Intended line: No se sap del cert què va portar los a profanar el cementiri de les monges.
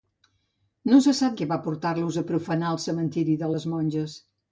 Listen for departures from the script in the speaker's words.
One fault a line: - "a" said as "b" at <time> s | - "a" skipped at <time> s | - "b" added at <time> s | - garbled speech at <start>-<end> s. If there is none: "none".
- "del cert" skipped at 1.4 s